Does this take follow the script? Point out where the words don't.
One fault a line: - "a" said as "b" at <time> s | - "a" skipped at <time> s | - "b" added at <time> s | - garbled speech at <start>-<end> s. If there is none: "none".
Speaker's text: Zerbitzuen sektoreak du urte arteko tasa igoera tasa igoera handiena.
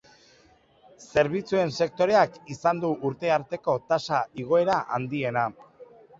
- "izan" added at 2.5 s
- "tasa igoera" skipped at 4.8 s